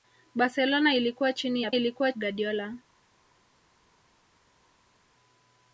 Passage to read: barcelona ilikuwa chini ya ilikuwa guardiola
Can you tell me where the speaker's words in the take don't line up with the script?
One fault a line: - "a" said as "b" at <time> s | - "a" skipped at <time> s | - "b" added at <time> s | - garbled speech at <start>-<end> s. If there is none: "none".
none